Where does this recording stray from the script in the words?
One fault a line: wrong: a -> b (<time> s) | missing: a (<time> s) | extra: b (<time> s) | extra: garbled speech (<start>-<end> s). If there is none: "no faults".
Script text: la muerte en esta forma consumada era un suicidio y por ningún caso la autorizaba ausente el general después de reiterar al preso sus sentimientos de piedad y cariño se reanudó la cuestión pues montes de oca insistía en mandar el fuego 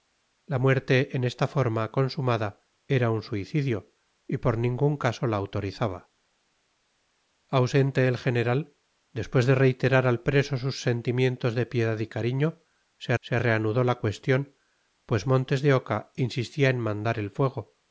extra: se (13.2 s)